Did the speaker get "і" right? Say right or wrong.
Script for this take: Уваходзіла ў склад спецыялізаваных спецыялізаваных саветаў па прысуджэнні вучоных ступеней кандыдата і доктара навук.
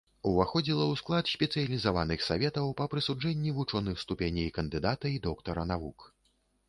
right